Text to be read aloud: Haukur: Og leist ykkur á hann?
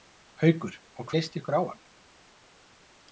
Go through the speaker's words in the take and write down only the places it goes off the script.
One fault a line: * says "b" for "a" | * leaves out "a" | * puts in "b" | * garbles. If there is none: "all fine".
all fine